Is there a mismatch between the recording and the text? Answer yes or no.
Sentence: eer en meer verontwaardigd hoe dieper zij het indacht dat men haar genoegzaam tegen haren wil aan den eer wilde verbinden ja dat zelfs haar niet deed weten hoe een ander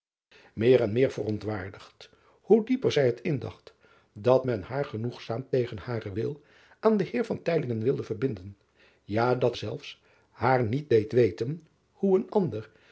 no